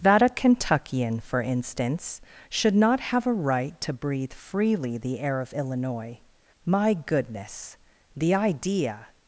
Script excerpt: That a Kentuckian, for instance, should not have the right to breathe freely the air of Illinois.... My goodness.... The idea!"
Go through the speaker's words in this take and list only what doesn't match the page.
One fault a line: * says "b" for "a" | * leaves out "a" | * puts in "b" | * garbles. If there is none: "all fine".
* says "a" for "the"